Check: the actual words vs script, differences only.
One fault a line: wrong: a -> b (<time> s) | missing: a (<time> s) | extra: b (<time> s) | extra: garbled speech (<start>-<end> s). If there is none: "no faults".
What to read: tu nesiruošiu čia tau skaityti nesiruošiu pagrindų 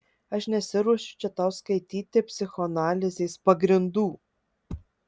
wrong: tu -> aš (0.3 s)
wrong: nesiruošiu -> psichoanalizės (2.3 s)